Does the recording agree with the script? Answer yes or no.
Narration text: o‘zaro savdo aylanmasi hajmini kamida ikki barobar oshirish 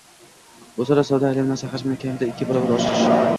yes